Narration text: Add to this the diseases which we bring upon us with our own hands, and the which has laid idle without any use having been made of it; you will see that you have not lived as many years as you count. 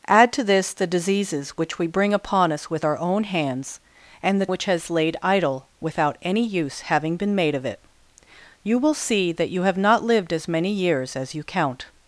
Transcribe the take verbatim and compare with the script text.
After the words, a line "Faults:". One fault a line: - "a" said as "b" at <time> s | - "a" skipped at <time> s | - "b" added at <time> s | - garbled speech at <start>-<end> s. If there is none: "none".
Add to this the diseases which we bring upon us with our own hands, and the which has laid idle without any use having been made of it; you will see that you have not lived as many years as you count.
Faults:
none